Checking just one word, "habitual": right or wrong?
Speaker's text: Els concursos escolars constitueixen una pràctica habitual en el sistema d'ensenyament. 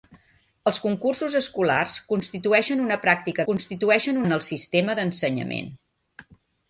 wrong